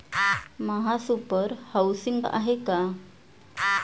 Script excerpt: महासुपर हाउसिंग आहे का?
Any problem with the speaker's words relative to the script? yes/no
no